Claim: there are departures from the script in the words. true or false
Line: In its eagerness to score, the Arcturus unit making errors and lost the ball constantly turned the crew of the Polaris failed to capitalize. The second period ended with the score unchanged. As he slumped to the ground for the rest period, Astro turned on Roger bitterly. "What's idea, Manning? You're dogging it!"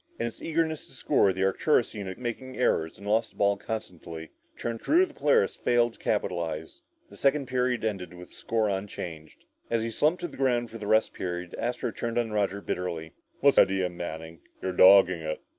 false